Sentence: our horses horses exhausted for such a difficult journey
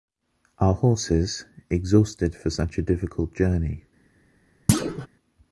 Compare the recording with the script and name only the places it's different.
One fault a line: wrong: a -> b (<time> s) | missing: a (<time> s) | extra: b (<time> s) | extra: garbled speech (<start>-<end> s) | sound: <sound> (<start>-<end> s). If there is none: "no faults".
missing: horses (1.4 s)
sound: thud (4.7-5.1 s)